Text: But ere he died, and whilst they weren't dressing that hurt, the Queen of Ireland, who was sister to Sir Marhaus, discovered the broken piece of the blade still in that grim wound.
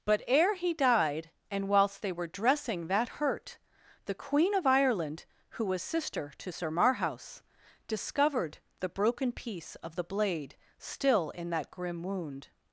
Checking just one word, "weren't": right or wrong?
wrong